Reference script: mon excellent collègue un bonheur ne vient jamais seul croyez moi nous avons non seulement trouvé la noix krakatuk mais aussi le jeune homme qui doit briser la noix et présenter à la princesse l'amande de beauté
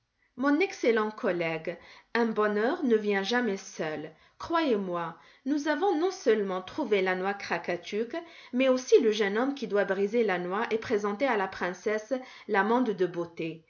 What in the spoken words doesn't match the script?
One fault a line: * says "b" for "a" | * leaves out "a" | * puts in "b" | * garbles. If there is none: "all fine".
all fine